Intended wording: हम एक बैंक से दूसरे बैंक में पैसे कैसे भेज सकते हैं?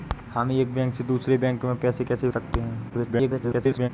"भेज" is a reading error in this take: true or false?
true